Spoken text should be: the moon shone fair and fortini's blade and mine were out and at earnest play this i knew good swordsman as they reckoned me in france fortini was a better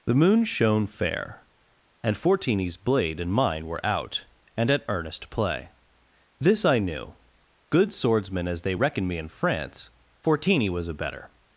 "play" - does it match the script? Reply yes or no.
yes